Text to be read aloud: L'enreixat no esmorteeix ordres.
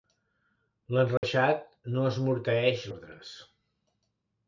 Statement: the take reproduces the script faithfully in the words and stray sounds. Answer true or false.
false